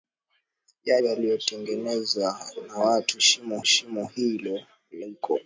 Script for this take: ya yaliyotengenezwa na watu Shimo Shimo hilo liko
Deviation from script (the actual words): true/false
false